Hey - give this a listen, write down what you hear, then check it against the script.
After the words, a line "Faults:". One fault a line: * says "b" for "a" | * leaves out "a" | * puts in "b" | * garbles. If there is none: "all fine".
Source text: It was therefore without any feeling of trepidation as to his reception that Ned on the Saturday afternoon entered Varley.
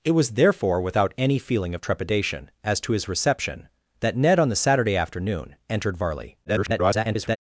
It was therefore without any feeling of trepidation as to his reception that Ned on the Saturday afternoon entered Varley. [garbled]
Faults:
* garbles